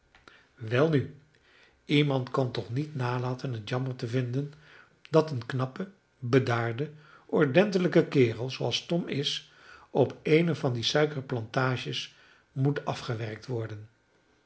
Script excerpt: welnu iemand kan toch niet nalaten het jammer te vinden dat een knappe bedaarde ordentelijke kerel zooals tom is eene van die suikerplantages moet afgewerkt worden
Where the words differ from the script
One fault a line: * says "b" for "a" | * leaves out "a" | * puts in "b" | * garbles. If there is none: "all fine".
* puts in "op"